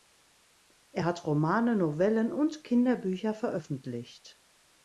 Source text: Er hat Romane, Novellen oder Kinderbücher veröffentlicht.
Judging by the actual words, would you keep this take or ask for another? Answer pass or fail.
fail